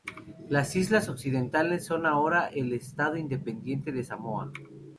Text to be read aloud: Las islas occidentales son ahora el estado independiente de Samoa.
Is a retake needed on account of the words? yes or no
no